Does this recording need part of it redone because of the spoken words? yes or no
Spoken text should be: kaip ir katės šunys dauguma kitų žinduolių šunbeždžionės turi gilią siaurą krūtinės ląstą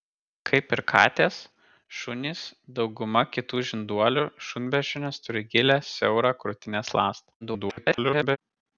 yes